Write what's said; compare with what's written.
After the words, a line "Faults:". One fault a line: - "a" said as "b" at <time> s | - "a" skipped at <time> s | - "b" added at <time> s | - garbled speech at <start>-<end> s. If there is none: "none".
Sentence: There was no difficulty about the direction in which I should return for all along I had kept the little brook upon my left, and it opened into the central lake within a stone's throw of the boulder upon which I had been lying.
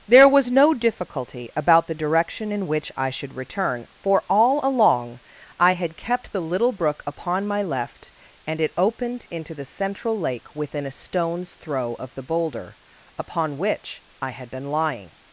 There was no difficulty about the direction in which I should return for all along I had kept the little brook upon my left, and it opened into the central lake within a stone's throw of the boulder upon which I had been lying.
Faults:
none